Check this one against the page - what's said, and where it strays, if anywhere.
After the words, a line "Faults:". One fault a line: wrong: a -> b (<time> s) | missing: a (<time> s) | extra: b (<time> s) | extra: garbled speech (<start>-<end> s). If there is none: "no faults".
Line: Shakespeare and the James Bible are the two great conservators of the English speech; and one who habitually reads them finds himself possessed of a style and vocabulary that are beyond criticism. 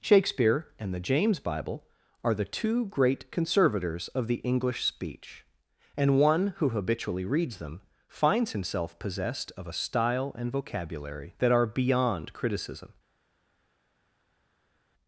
Shakespeare and the James Bible are the two great conservators of the English speech; and one who habitually reads them finds himself possessed of a style and vocabulary that are beyond criticism.
Faults:
no faults